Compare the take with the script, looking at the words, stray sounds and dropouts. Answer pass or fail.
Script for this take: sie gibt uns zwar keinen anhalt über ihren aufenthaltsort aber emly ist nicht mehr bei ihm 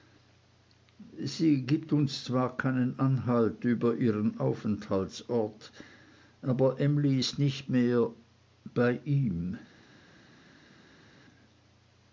pass